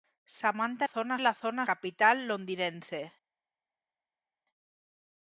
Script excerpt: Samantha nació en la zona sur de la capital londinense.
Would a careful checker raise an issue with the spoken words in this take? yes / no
yes